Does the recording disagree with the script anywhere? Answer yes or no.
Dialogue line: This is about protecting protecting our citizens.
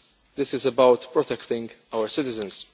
yes